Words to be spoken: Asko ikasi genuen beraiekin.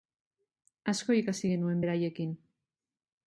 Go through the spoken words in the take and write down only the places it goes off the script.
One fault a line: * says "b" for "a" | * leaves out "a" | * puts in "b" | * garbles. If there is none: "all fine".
all fine